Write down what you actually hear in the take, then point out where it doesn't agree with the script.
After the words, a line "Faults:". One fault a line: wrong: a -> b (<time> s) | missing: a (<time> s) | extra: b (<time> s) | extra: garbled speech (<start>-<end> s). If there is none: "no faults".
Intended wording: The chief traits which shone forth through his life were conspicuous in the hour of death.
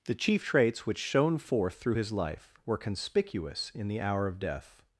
The chief traits which shone forth through his life were conspicuous in the hour of death.
Faults:
no faults